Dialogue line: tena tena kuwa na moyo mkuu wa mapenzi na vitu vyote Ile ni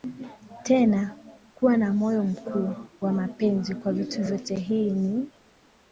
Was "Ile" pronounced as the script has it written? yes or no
no